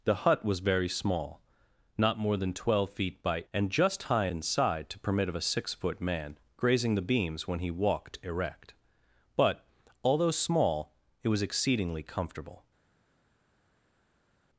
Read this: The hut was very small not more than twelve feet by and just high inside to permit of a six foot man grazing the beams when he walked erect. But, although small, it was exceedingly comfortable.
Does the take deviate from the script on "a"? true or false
false